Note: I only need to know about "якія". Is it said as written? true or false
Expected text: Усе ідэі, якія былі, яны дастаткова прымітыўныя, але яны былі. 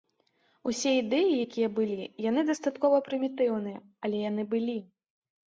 true